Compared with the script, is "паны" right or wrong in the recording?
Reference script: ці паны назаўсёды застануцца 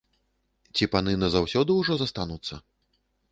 right